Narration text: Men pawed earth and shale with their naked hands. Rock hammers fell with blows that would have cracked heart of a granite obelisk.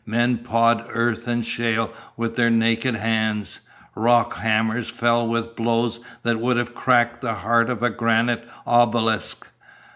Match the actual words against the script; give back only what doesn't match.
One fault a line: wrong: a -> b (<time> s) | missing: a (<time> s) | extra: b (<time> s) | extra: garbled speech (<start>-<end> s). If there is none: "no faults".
extra: the (7.2 s)